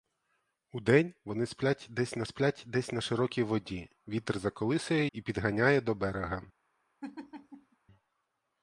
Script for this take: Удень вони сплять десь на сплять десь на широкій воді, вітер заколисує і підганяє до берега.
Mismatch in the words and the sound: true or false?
true